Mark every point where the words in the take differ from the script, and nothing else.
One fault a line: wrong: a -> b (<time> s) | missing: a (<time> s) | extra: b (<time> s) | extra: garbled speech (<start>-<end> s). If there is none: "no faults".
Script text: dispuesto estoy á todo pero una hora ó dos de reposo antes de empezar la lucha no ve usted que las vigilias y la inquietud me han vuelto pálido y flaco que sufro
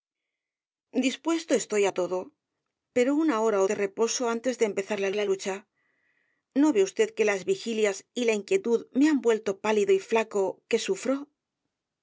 missing: dos (3.7 s)
extra: la (5.2 s)